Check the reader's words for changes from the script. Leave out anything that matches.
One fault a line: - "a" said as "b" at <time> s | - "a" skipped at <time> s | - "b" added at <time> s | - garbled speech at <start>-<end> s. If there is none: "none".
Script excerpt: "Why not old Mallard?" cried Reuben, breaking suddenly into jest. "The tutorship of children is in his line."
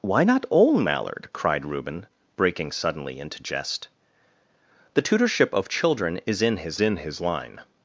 - "in his" added at 6.8 s